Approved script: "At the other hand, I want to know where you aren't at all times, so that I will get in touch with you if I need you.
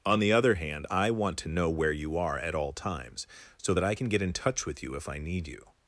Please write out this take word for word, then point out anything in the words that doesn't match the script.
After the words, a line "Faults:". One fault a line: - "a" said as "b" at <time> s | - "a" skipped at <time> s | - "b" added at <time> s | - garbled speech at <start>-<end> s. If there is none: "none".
"On the other hand, I want to know where you are at all times, so that I can get in touch with you if I need you.
Faults:
- "At" said as "On" at 0.0 s
- "aren't" said as "are" at 2.2 s
- "will" said as "can" at 3.9 s